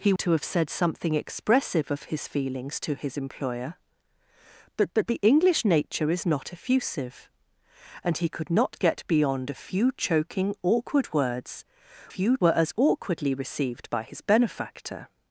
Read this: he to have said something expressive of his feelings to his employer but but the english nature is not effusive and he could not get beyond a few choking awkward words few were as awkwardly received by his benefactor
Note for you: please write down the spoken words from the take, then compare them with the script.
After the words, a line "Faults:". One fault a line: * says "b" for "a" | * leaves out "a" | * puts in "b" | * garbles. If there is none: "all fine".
he to have said something expressive of his feelings to his employer but but the english nature is not effusive and he could not get beyond a few choking awkward words few were as awkwardly received by his benefactor
Faults:
all fine